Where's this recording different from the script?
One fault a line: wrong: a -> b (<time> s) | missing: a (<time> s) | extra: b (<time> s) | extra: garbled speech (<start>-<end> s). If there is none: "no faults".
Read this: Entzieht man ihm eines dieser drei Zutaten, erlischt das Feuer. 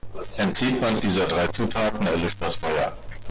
missing: ihm eines (1.0 s)